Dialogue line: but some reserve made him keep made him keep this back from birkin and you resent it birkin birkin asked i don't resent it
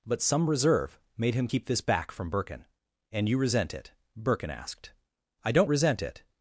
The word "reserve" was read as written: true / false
true